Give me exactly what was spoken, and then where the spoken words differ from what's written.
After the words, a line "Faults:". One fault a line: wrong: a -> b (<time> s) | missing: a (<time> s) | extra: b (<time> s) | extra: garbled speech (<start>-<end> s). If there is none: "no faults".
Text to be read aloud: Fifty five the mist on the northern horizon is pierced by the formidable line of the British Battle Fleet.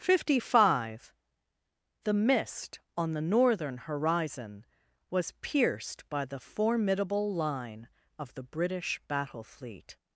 Fifty five the mist on the northern horizon was pierced by the formidable line of the British Battle Fleet.
Faults:
wrong: is -> was (5.1 s)